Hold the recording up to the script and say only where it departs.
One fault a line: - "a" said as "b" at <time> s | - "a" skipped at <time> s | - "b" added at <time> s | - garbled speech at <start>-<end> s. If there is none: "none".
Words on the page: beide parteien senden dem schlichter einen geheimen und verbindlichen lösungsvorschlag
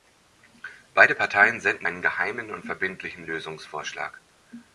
- "dem schlichter" skipped at 1.9 s